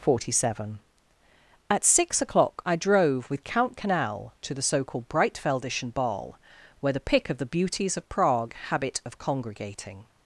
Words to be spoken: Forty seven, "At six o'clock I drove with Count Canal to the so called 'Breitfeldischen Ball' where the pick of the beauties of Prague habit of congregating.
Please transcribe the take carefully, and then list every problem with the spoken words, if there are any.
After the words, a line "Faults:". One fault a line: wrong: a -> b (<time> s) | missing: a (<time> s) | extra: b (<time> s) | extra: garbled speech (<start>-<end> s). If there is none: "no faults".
Forty seven, "At six o'clock I drove with Count Canal to the so called 'Breitfeldischen Ball' where the pick of the beauties of Prague habit of congregating.
Faults:
no faults